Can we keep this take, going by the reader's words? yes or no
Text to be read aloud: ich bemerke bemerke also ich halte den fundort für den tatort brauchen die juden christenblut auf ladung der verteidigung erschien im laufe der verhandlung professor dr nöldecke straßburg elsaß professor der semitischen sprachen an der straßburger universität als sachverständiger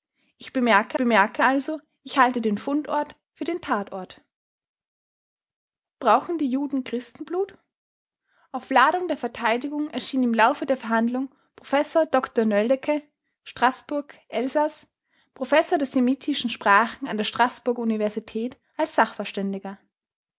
yes